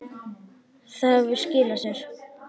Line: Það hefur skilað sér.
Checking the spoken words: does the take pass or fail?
pass